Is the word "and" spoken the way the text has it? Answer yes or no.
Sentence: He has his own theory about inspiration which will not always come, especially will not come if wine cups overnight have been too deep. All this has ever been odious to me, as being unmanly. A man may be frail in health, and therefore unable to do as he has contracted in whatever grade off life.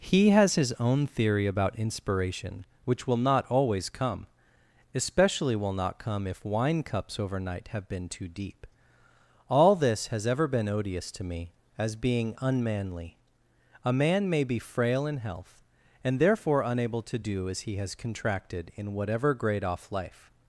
yes